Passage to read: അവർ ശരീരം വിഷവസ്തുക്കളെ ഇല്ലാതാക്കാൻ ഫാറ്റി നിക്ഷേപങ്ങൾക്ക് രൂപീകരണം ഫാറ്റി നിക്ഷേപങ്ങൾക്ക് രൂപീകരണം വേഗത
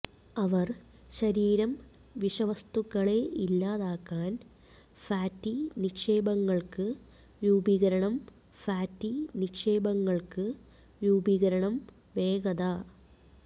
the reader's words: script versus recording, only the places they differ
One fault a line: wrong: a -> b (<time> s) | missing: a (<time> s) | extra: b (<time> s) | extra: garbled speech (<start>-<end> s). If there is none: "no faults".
no faults